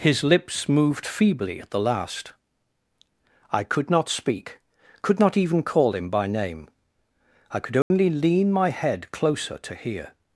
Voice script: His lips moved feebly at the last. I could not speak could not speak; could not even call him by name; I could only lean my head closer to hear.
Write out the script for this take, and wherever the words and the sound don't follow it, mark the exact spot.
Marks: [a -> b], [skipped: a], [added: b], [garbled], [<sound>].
His lips moved feebly at the last. I could not speak could not [skipped: speak; could not] even call him by name; I could only [dropout] lean my head closer to hear.